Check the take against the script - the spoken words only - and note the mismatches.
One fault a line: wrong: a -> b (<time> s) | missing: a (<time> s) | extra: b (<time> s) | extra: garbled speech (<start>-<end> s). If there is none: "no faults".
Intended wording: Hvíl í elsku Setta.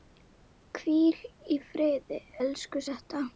extra: friði (1.7 s)